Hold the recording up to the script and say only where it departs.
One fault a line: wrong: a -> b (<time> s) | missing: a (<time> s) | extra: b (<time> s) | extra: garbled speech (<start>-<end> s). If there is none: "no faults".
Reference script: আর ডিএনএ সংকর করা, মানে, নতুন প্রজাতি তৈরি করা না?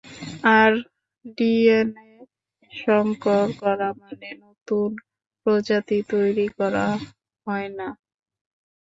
extra: হয় (7.5 s)